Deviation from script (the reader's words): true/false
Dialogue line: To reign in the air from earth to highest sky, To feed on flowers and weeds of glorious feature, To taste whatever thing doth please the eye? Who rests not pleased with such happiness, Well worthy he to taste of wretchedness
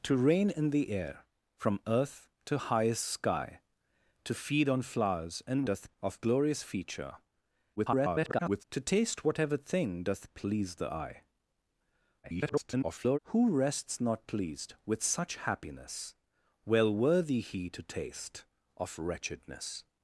true